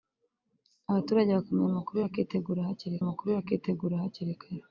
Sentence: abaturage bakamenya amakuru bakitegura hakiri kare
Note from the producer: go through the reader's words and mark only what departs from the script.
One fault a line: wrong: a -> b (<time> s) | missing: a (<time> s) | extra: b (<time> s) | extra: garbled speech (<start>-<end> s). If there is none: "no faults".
extra: amakuru bakitegura hakiri (3.0 s)